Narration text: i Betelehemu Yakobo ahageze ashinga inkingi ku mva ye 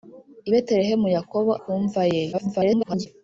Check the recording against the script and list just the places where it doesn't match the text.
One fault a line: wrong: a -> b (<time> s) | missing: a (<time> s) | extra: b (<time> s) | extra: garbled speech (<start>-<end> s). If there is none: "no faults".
missing: ahageze ashinga inkingi (1.5 s)
extra: garbled speech (2.3-3.1 s)